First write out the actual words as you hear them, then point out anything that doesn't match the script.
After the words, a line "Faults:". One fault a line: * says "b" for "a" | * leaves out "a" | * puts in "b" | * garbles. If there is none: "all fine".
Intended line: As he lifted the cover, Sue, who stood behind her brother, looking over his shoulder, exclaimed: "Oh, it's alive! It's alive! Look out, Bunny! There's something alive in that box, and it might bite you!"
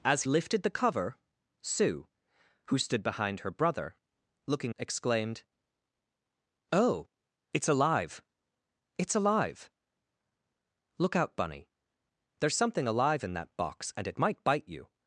As lifted the cover, Sue, who stood behind her brother, looking exclaimed: "Oh, it's alive! It's alive! Look out, Bunny! There's something alive in that box, and it might bite you!"
Faults:
* leaves out "he"
* leaves out "over his shoulder"